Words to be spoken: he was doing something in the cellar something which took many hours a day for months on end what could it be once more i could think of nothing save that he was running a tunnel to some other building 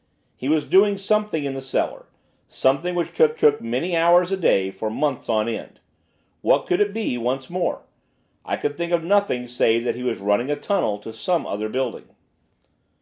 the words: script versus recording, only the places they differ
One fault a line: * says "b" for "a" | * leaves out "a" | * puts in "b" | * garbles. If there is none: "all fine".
* puts in "took"